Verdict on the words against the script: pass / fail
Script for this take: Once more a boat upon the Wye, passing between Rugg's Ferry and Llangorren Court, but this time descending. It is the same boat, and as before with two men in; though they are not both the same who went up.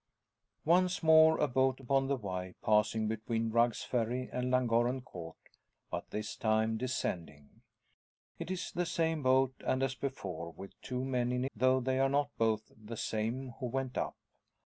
pass